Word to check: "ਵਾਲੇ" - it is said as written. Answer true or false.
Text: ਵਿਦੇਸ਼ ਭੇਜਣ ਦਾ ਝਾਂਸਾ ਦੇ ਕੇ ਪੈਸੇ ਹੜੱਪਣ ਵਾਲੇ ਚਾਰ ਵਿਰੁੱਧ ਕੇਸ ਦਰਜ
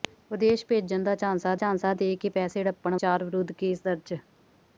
false